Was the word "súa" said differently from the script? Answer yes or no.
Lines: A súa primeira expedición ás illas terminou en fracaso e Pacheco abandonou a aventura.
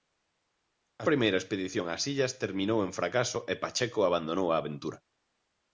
yes